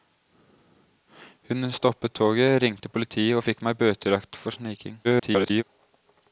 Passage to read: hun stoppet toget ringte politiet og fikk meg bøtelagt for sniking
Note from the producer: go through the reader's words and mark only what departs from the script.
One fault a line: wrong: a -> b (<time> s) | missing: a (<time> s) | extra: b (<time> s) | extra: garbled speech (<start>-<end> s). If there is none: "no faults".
extra: garbled speech (5.0-5.6 s)